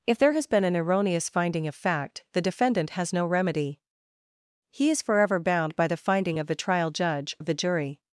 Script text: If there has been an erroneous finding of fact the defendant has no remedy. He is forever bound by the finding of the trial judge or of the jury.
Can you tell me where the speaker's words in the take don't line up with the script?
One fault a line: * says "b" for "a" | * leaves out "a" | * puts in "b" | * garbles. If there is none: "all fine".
* leaves out "or"